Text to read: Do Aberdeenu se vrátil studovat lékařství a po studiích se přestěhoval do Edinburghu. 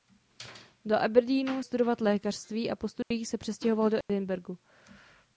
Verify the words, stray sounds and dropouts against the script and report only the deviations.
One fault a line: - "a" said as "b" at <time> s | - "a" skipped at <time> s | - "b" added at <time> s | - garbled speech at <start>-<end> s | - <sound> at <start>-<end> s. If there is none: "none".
- "se vrátil" skipped at 1.6 s
- dropout at 3.0-3.1 s
- dropout at 4.0-4.1 s